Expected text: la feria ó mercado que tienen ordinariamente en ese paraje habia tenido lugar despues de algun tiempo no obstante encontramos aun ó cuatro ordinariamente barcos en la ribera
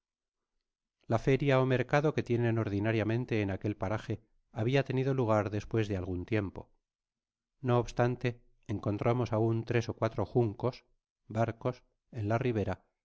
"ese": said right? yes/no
no